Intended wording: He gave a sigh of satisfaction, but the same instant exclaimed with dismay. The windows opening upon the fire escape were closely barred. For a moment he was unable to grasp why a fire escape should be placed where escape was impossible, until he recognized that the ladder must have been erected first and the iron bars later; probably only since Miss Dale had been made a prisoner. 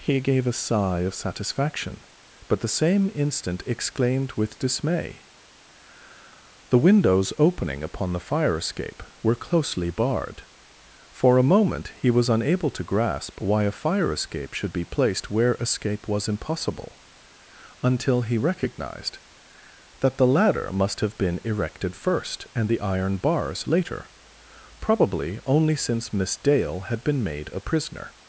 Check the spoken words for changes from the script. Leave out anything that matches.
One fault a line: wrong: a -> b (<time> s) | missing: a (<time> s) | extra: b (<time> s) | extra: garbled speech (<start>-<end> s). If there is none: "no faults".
no faults